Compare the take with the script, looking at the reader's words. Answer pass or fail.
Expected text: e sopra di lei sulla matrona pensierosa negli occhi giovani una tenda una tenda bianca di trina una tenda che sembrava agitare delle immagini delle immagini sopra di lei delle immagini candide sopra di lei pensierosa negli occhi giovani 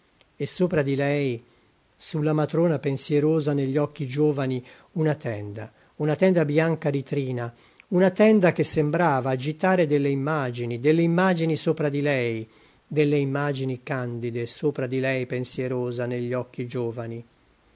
pass